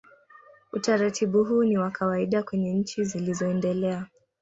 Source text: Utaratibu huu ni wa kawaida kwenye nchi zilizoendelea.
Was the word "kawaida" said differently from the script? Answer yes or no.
no